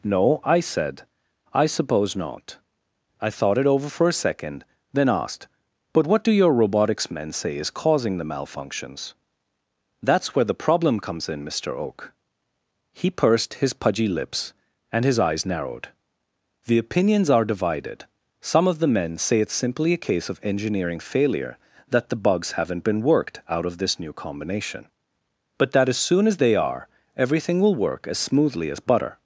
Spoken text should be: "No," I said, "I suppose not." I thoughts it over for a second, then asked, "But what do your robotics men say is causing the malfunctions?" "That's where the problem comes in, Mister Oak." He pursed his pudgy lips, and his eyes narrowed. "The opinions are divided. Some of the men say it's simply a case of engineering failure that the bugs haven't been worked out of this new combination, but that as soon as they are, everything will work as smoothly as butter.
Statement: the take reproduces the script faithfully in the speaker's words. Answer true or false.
false